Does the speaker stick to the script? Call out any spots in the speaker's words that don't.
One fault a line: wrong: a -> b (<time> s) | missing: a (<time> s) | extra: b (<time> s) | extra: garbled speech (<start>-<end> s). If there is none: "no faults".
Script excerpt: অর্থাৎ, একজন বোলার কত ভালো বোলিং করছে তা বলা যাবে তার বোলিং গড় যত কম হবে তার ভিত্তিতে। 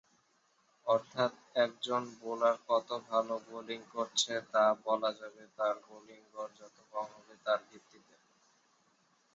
no faults